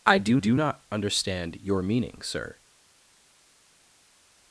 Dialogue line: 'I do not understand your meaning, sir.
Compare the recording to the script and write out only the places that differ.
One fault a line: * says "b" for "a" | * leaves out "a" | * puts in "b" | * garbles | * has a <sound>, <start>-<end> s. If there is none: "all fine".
* puts in "do"